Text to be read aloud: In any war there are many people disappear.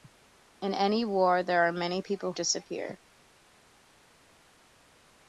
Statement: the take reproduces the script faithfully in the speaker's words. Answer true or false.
true